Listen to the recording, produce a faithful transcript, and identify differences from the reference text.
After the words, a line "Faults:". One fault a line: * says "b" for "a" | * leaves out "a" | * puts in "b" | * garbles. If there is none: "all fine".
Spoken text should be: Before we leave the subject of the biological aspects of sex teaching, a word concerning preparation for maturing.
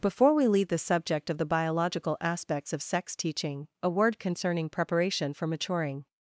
Before we leave the subject of the biological aspects of sex teaching, a word concerning preparation for maturing.
Faults:
all fine